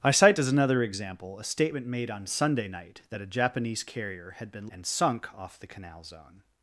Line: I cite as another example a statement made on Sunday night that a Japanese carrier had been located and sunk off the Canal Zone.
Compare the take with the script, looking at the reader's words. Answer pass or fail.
fail